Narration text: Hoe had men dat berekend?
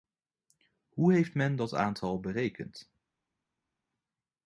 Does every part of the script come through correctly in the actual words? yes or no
no